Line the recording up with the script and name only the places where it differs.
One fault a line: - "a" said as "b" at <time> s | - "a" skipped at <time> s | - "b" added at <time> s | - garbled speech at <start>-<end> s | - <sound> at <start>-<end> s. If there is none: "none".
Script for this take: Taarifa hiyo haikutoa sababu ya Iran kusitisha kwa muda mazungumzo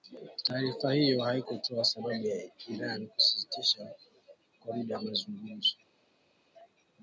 none